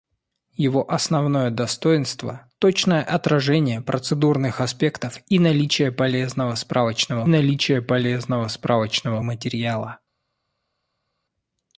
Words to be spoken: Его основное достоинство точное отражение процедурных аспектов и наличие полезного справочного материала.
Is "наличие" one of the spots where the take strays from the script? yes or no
no